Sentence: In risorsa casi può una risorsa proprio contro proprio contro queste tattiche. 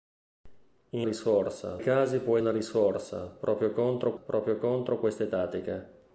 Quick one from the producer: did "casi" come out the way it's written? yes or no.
yes